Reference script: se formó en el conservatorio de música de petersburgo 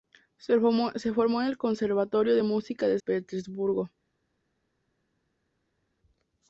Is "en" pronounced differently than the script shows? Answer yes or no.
no